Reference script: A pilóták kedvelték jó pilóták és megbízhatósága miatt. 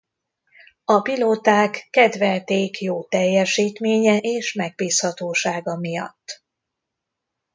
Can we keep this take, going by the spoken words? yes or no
no